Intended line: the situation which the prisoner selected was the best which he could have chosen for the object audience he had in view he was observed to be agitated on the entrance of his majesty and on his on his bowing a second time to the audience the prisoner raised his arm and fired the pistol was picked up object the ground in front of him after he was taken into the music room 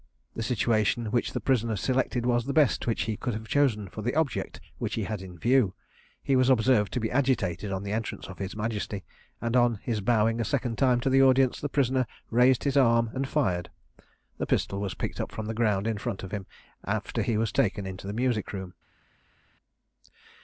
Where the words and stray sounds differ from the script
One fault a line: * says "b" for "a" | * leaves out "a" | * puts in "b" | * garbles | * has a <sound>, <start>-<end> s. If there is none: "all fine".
* says "which" for "audience"
* leaves out "on his"
* says "from" for "object"